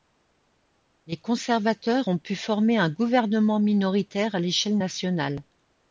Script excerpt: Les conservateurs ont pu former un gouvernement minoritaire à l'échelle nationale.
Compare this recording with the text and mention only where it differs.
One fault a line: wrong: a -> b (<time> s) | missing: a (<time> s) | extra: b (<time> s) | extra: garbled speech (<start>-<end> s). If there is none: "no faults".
no faults